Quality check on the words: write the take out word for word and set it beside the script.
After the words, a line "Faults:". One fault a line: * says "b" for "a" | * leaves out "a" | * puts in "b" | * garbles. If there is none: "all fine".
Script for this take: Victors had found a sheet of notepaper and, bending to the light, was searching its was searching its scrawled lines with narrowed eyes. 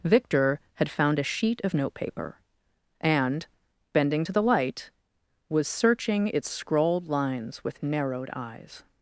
Victor had found a sheet of notepaper and, bending to the light, was searching its scrawled lines with narrowed eyes.
Faults:
* says "Victor" for "Victors"
* leaves out "was searching its"